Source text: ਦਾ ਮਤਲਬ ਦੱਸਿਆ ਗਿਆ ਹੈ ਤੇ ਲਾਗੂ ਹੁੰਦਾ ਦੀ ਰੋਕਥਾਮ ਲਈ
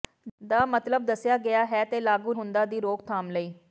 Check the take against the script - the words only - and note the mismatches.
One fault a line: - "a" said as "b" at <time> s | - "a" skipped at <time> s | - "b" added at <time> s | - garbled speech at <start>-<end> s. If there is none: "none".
none